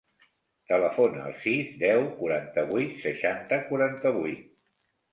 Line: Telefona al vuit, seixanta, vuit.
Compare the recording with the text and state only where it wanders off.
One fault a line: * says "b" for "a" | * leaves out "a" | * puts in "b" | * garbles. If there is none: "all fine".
* puts in "sis deu quaranta"
* puts in "quaranta"